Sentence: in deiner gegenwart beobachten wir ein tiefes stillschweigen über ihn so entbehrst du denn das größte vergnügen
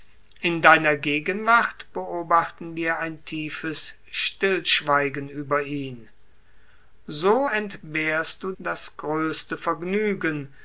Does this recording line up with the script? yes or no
no